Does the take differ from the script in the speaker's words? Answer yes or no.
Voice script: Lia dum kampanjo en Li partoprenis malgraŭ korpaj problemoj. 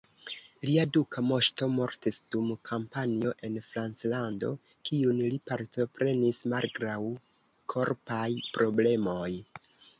yes